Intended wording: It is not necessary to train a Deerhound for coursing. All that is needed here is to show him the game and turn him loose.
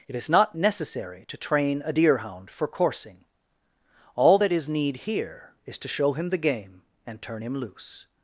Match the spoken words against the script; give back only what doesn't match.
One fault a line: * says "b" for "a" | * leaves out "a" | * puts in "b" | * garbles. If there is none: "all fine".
* says "need" for "needed"